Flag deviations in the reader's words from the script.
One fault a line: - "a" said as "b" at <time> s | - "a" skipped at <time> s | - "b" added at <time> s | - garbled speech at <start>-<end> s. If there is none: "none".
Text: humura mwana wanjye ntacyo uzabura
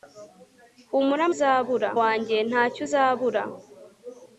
- "mwana" said as "uzabura" at 1.3 s